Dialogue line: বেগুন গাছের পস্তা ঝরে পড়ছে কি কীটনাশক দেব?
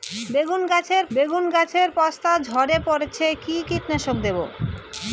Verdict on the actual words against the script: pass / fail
fail